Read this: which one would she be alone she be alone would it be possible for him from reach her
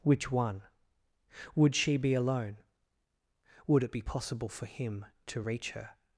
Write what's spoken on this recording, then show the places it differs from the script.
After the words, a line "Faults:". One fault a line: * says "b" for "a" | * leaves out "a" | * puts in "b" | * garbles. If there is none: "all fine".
which one would she be alone would it be possible for him to reach her
Faults:
* leaves out "she be alone"
* says "to" for "from"